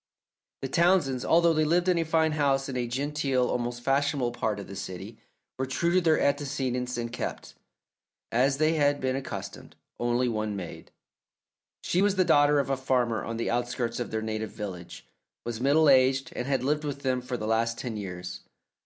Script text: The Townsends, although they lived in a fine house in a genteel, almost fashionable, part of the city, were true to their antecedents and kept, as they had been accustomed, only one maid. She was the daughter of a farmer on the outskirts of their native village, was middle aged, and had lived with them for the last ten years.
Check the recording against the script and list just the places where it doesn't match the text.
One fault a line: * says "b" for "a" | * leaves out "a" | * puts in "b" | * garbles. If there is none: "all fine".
all fine